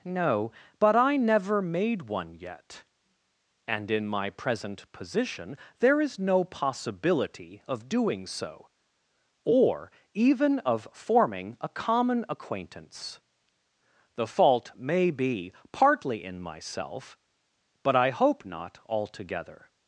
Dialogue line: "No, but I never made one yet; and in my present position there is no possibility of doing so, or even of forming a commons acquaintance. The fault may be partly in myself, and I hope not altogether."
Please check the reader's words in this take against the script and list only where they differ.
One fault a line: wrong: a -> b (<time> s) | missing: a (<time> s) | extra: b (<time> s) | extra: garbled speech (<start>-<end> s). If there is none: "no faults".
wrong: commons -> common (11.7 s)
wrong: and -> but (17.8 s)